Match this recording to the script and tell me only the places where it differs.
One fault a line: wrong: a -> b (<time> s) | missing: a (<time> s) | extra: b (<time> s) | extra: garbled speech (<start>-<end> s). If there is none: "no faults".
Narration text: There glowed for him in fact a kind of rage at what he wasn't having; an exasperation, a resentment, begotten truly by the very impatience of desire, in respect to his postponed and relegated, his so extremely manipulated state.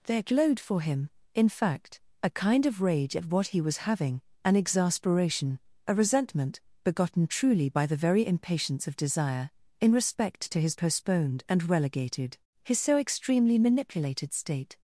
wrong: wasn't -> was (3.6 s)